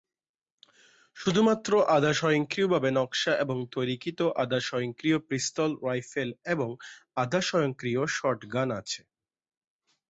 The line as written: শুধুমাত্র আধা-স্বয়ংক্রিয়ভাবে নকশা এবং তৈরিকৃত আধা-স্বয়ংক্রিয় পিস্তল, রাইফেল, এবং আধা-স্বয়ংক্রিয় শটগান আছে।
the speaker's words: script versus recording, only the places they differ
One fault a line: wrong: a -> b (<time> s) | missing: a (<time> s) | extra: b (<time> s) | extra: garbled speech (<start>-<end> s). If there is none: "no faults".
no faults